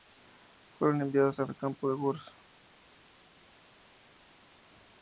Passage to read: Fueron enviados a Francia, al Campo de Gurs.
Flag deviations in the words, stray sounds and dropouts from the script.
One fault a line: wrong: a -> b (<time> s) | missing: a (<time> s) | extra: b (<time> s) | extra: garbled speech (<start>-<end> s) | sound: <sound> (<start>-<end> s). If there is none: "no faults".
missing: Francia (1.5 s)